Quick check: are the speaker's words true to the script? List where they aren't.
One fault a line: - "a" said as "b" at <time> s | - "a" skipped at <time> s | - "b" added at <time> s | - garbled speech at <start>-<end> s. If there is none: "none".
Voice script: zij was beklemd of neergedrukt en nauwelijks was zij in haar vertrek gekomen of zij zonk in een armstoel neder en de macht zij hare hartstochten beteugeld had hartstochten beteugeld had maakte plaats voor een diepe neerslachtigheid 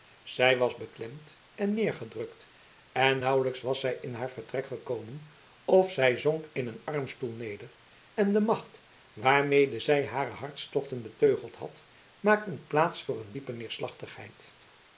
- "of" said as "en" at 1.6 s
- "waarmede" added at 9.1 s
- "hartstochten beteugeld had" skipped at 11.8 s